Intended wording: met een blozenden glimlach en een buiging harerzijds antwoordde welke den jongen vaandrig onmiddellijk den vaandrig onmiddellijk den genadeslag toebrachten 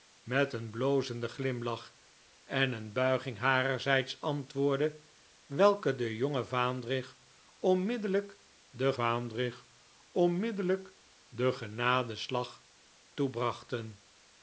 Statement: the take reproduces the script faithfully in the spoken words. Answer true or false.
true